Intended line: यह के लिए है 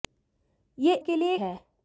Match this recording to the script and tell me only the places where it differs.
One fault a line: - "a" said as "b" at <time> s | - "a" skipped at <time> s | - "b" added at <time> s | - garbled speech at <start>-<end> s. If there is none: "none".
none